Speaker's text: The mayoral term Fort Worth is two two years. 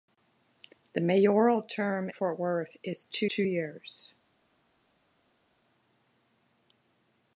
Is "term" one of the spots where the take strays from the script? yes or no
no